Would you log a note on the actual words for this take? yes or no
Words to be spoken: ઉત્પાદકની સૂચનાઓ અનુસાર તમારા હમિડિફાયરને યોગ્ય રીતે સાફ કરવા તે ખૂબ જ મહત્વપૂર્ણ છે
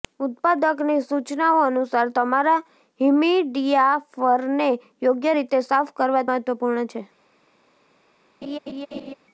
yes